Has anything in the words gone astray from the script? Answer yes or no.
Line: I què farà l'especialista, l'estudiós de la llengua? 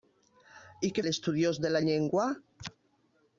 yes